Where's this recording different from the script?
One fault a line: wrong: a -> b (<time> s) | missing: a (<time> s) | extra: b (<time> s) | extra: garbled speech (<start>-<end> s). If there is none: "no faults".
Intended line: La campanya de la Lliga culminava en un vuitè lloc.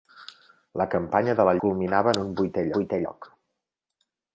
missing: Lliga (1.6 s)
extra: vuitè (2.8 s)